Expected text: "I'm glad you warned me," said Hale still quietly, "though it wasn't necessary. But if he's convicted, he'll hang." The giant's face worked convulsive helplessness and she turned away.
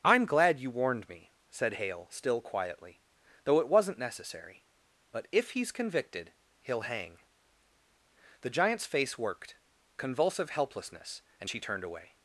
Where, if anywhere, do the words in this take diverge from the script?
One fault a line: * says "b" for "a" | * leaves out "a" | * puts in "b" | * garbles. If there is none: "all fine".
all fine